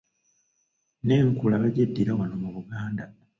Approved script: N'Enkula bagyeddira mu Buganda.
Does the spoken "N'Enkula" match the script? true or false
true